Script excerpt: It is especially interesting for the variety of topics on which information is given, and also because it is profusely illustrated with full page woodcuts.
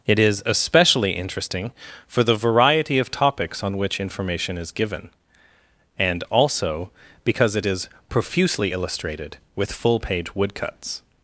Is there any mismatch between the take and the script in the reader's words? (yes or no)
no